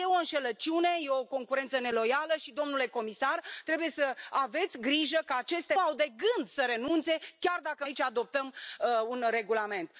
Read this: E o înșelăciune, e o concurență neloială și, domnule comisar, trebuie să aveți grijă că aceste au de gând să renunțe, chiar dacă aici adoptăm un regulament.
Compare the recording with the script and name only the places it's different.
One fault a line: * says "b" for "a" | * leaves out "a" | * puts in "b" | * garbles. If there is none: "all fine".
all fine